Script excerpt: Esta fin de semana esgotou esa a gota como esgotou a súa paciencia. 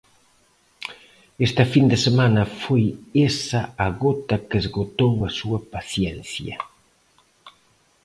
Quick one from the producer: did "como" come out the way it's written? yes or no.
no